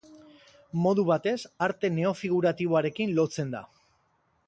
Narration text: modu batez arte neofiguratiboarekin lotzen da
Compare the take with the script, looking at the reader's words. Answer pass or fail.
pass